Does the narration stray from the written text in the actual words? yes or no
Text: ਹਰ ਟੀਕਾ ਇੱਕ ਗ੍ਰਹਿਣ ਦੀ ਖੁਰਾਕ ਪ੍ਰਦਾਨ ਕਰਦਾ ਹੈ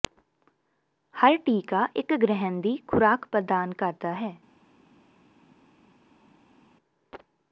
no